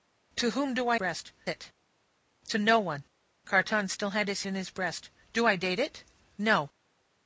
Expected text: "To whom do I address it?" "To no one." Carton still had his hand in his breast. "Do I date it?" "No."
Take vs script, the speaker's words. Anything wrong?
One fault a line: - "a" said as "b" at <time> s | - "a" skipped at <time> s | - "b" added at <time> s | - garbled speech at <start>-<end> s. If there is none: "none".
- "address" said as "breast" at 0.9 s
- "hand" skipped at 4.4 s